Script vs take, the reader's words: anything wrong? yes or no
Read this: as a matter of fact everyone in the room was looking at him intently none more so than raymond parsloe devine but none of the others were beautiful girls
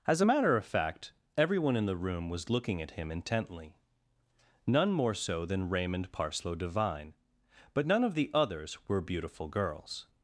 no